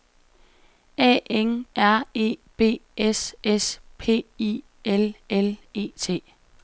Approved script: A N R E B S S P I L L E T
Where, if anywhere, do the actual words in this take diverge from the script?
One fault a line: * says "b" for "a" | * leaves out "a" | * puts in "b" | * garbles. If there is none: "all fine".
all fine